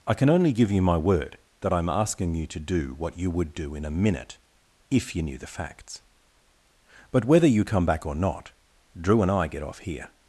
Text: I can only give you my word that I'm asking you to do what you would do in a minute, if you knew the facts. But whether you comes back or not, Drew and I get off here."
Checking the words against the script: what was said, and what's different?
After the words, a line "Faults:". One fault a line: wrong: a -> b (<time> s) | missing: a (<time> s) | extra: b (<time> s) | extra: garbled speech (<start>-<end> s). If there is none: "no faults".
I can only give you my word that I'm asking you to do what you would do in a minute, if you knew the facts. But whether you come back or not, Drew and I get off here."
Faults:
wrong: comes -> come (7.6 s)